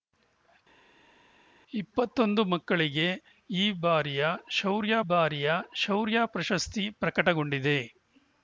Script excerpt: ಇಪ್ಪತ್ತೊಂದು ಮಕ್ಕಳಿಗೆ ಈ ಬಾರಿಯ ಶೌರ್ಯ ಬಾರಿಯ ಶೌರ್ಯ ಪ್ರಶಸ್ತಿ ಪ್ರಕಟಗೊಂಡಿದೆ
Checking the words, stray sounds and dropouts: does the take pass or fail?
pass